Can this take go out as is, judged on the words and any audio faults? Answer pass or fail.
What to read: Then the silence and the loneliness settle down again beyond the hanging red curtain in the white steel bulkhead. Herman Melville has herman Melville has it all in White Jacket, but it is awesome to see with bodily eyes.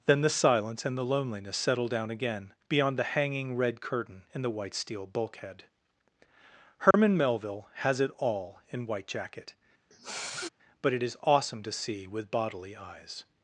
fail